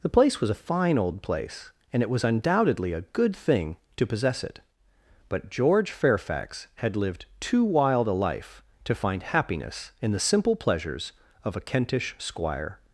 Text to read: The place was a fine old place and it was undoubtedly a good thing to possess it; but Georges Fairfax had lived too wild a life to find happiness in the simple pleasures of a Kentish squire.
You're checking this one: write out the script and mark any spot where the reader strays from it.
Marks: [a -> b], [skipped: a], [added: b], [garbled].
The place was a fine old place and it was undoubtedly a good thing to possess it; but [Georges -> George] Fairfax had lived too wild a life to find happiness in the simple pleasures of a Kentish squire.